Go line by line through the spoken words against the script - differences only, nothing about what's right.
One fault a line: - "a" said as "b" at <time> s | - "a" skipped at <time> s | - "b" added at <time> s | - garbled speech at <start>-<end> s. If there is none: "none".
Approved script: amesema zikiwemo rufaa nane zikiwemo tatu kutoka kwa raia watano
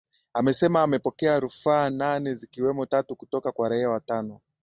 - "zikiwemo" said as "amepokea" at 0.8 s